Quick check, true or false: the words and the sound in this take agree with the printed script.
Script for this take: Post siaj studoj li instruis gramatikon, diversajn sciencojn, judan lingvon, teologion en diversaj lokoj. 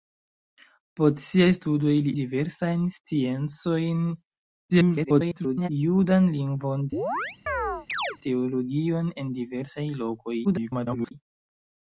false